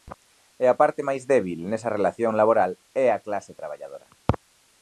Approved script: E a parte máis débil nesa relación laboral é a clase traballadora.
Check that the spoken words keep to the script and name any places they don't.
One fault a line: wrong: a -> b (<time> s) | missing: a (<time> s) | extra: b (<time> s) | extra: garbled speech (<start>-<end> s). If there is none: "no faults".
no faults